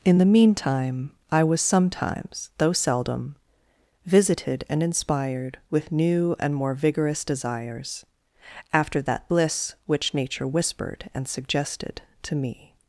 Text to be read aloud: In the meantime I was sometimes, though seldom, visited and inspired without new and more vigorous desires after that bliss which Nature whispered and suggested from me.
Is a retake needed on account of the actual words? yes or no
yes